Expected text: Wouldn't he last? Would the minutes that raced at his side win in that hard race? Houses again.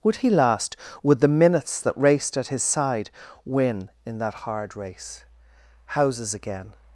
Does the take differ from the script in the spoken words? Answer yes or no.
yes